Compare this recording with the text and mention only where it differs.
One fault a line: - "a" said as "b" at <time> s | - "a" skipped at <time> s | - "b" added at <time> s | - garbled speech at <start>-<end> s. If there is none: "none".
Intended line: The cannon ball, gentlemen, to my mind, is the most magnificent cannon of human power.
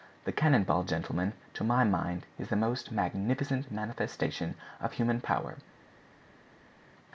- "cannon" said as "manifestation" at 3.7 s